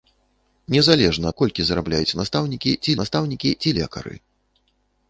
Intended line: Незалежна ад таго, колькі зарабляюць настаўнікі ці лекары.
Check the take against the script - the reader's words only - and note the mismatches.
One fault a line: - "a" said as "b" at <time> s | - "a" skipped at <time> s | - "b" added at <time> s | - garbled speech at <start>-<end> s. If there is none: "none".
- "таго" skipped at 1.3 s
- "настаўнікі ці" added at 3.0 s